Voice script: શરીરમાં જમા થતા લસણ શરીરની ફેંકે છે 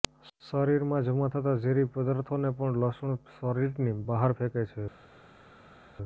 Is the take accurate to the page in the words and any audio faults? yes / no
no